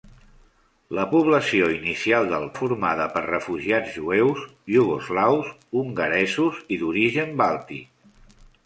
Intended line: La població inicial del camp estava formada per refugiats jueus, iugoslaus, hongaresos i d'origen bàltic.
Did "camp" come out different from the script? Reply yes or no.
yes